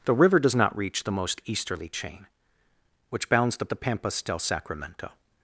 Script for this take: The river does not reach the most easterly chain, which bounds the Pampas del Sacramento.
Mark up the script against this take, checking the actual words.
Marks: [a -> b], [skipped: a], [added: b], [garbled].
The river does not reach the most easterly chain, which bounds the [added: the] Pampas del Sacramento.